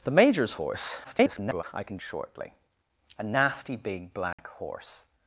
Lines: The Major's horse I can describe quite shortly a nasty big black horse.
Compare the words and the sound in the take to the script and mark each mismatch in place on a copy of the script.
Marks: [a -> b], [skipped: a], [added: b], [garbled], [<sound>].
The Major's horse [garbled] I can [skipped: describe quite] shortly a nasty big black [dropout] horse.